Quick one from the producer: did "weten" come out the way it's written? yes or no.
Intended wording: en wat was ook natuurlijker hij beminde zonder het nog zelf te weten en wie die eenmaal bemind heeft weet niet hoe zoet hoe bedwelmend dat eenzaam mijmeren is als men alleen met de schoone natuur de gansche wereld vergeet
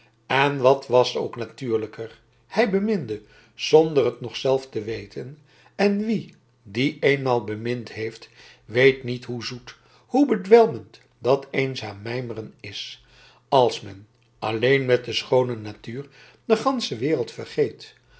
yes